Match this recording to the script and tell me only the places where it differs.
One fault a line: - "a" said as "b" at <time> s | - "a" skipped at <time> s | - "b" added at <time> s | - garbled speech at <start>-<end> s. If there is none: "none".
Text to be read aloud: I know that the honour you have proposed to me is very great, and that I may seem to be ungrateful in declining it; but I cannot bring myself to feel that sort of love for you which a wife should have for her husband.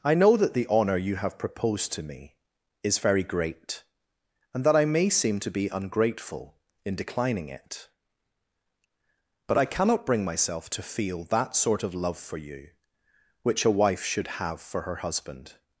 none